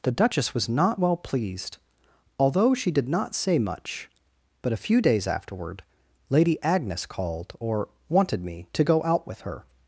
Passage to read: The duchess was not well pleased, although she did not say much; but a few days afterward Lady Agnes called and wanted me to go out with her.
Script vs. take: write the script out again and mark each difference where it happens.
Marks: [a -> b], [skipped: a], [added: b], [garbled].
The duchess was not well pleased, although she did not say much; but a few days afterward Lady Agnes called [and -> or] wanted me to go out with her.